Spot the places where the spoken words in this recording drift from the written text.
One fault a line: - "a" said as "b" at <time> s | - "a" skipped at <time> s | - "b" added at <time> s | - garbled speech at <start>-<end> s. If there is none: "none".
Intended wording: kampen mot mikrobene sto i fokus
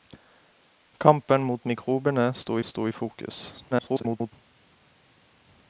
- "sto" added at 2.6 s
- garbled speech at 3.7-4.3 s